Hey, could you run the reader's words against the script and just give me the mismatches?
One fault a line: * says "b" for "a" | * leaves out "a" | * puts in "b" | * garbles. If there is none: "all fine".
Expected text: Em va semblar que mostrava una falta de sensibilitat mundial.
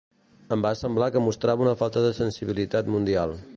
all fine